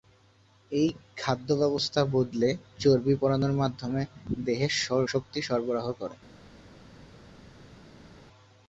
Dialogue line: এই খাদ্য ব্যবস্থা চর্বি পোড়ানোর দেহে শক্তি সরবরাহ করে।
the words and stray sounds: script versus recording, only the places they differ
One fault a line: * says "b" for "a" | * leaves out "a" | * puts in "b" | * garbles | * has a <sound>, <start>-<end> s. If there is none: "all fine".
* puts in "বদলে"
* puts in "মাধ্যমে"